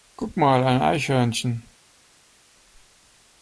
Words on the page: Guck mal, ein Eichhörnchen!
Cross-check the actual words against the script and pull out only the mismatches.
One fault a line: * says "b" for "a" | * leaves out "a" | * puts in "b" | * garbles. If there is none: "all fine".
all fine